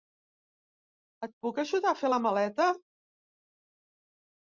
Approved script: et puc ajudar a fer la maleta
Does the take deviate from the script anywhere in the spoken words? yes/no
no